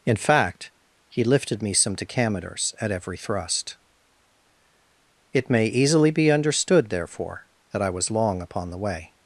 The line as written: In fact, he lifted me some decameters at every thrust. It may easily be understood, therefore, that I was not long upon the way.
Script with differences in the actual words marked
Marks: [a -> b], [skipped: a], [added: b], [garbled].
In fact, he lifted me some decameters at every thrust. It may easily be understood, therefore, that I was [skipped: not] long upon the way.